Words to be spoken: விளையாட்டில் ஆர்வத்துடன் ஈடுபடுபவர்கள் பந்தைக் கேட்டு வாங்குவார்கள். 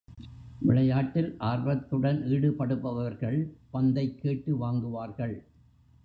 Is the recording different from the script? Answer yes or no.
no